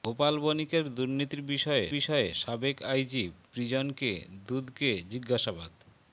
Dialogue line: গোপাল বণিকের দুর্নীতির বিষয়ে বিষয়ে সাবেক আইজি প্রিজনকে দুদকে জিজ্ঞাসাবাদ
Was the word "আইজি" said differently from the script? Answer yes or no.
no